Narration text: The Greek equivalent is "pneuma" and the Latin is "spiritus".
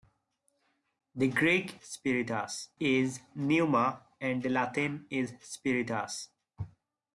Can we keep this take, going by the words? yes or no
no